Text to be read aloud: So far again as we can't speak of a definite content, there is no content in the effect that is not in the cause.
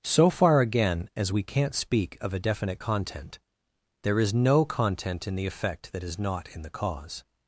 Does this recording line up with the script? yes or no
yes